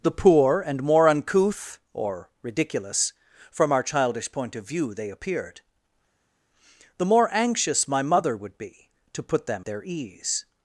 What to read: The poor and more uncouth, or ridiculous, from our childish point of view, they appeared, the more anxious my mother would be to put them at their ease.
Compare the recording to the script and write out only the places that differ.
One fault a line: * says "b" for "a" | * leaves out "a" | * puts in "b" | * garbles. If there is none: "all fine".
* leaves out "at"